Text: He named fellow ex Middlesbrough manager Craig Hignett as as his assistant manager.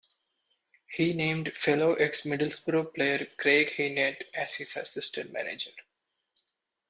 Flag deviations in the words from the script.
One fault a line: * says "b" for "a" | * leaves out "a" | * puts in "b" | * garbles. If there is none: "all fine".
* says "player" for "manager"
* leaves out "as"